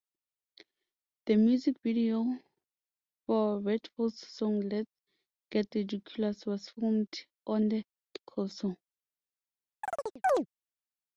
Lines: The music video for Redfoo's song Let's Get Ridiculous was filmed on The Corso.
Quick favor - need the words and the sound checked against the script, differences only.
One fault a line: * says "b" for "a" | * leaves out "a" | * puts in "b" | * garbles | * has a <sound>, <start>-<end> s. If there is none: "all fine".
* has a chirp, 9.8-10.5 s